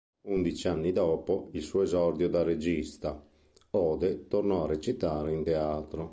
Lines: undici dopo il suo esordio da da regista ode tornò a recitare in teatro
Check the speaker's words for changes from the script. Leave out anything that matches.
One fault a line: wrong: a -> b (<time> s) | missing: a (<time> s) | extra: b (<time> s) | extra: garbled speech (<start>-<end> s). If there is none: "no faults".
extra: anni (0.7 s)
missing: da (2.4 s)